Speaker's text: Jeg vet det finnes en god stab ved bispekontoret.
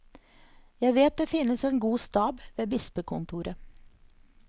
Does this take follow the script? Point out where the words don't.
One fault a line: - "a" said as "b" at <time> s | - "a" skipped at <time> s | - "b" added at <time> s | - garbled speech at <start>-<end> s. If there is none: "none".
none